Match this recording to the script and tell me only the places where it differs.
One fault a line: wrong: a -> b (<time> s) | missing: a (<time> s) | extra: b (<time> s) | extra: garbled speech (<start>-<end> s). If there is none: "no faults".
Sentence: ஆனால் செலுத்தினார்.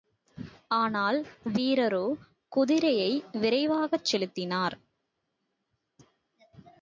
extra: வீரரோ குதிரையை விரைவாகச் (1.5 s)